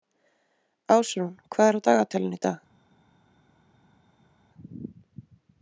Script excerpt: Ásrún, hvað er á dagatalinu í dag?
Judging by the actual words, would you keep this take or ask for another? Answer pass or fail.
pass